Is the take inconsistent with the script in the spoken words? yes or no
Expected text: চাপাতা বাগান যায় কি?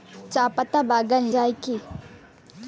no